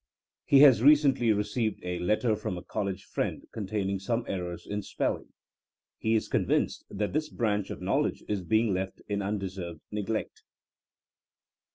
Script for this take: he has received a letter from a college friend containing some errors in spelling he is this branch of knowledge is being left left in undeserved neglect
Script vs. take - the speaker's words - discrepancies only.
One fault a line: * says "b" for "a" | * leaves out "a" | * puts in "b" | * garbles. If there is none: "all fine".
* puts in "recently"
* puts in "convinced that"
* leaves out "left"